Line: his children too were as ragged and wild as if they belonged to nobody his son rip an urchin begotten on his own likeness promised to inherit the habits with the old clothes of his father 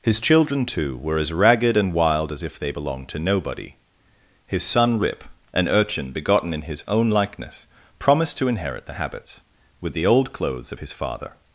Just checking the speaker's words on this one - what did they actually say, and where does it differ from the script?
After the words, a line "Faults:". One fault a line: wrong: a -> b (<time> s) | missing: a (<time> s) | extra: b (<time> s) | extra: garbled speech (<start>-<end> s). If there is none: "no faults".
his children too were as ragged and wild as if they belonged to nobody his son rip an urchin begotten in his own likeness promised to inherit the habits with the old clothes of his father
Faults:
wrong: on -> in (6.5 s)